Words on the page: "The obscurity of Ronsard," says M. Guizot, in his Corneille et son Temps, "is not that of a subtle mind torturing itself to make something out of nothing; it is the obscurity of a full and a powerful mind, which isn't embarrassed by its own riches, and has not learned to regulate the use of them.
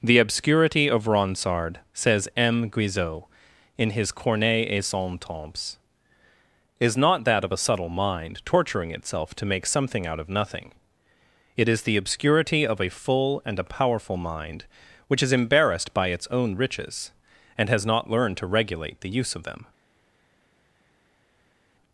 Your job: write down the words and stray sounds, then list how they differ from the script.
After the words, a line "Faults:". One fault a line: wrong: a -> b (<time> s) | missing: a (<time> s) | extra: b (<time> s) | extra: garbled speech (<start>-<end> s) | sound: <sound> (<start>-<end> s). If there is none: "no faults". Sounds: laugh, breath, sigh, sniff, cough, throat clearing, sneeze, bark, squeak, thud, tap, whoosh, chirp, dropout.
"The obscurity of Ronsard," says M. Guizot, in his Corneille et son Temps, "is not that of a subtle mind torturing itself to make something out of nothing; it is the obscurity of a full and a powerful mind, which is embarrassed by its own riches, and has not learned to regulate the use of them.
Faults:
wrong: isn't -> is (15.2 s)